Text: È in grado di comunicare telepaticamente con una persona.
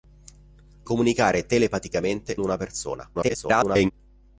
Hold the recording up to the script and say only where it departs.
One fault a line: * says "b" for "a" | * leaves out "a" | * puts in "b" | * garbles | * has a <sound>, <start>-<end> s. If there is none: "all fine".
* leaves out "in grado di"
* leaves out "con"
* garbles